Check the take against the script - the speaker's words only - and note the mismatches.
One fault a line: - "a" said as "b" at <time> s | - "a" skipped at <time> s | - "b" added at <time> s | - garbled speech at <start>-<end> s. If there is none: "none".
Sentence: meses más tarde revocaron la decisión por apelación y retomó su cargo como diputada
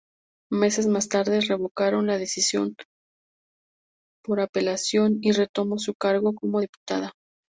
none